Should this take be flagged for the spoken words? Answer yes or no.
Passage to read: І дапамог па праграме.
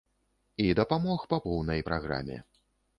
yes